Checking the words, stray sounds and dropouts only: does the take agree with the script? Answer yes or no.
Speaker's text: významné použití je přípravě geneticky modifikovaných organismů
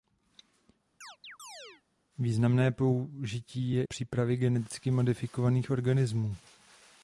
no